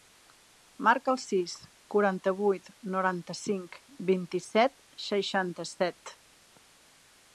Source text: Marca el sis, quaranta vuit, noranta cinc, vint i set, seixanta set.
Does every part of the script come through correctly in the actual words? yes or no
yes